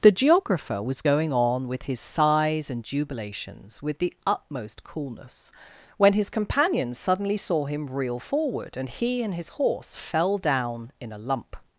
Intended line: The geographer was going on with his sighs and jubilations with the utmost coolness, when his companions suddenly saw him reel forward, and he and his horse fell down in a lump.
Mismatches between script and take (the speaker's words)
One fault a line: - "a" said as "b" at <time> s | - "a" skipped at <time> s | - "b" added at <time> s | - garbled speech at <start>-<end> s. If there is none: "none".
none